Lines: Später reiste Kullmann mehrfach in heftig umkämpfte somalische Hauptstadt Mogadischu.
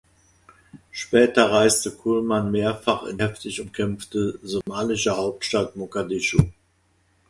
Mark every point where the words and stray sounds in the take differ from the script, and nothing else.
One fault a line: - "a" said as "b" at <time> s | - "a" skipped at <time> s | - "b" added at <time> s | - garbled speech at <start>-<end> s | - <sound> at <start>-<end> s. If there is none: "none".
- dropout at 4.6-4.7 s